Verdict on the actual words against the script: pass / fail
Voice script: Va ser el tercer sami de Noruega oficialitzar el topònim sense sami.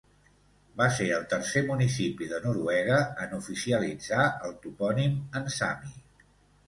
fail